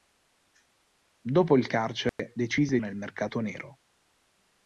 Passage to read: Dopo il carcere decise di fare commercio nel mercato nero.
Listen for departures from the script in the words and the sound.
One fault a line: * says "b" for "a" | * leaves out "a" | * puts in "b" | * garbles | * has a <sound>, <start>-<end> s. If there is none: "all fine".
* has a dropout, 2.1-2.2 s
* leaves out "di fare commercio"